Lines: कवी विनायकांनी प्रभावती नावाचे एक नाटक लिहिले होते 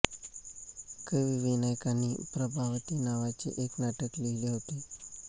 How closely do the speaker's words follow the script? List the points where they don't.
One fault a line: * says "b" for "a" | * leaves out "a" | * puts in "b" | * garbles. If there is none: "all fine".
all fine